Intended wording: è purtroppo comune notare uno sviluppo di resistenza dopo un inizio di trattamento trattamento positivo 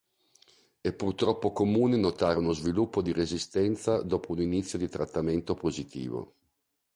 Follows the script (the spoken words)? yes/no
no